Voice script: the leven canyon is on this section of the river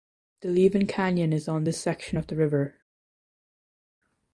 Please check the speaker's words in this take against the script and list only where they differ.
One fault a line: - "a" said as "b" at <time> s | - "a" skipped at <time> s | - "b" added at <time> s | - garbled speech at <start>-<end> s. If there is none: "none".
none